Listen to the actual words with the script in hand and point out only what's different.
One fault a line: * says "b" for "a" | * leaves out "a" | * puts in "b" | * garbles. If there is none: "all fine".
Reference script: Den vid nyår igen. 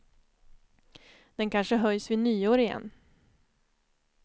* puts in "kanske höjs"